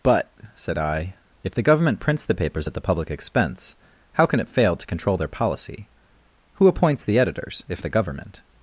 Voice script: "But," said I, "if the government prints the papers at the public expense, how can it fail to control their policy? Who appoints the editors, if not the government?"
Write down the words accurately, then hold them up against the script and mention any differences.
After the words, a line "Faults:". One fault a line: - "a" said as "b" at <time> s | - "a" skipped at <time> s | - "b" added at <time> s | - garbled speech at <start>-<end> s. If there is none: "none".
"But," said I, "if the government prints the papers at the public expense, how can it fail to control their policy? Who appoints the editors, if the government?"
Faults:
- "not" skipped at 7.8 s